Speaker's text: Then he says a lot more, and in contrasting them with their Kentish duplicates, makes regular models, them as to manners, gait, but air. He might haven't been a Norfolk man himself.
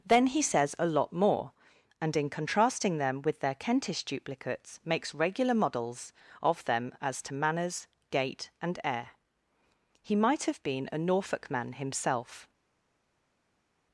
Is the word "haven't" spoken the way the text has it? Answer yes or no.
no